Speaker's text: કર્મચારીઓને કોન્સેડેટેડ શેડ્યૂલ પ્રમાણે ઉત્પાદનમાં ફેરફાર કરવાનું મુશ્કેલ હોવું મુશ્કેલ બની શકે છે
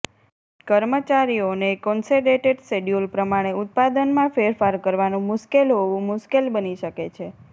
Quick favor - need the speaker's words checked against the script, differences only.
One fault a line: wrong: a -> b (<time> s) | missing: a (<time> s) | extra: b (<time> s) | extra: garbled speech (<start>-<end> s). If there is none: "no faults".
no faults